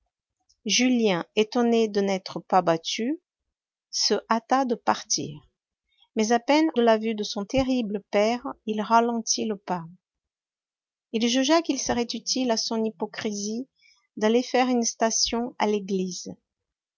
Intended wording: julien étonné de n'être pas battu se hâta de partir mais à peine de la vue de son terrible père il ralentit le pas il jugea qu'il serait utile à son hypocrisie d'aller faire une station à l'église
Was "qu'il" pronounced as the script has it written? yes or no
yes